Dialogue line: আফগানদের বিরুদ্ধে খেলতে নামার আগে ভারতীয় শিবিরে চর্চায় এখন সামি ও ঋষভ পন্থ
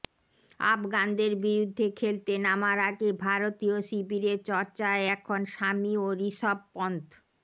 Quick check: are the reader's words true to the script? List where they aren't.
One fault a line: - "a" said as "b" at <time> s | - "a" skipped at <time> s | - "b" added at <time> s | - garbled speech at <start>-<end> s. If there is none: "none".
none